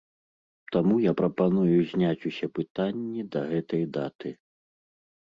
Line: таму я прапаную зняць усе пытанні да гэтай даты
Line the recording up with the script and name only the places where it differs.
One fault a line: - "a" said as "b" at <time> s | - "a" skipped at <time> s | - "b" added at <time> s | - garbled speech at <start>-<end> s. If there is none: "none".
none